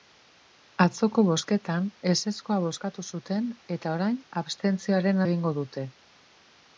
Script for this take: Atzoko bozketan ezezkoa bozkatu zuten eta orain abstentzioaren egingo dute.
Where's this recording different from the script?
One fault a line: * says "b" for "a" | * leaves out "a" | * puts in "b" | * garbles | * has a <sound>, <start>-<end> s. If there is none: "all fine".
all fine